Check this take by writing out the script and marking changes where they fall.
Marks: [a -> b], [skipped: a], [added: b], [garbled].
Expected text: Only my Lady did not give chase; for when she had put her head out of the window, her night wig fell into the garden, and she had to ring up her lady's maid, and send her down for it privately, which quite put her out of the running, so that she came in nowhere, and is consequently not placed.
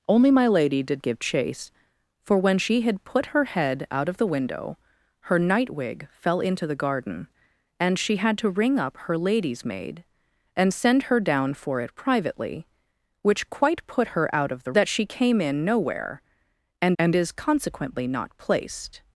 Only my Lady did [skipped: not] give chase; for when she had put her head out of the window, her night wig fell into the garden, and she had to ring up her lady's maid, and send her down for it privately, which quite put her out of the [skipped: running, so] that she came in nowhere, and [added: and] is consequently not placed.